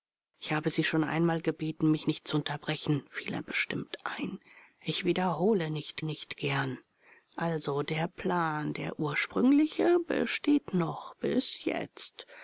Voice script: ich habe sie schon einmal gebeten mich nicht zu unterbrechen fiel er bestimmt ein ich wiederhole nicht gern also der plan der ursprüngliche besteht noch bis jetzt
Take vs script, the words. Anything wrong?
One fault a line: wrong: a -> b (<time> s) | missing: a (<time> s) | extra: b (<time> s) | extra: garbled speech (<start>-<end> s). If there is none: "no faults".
extra: nicht (6.0 s)